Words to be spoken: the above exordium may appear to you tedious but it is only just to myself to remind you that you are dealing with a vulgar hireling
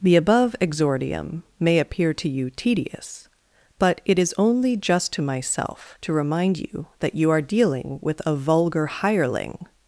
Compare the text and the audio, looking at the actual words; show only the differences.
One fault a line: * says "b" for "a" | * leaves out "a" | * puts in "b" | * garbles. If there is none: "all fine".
all fine